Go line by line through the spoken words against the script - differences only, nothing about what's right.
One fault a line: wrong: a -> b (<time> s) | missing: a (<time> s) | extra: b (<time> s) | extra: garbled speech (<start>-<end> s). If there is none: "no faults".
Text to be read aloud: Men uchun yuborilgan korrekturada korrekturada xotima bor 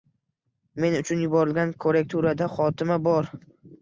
missing: korrekturada (2.5 s)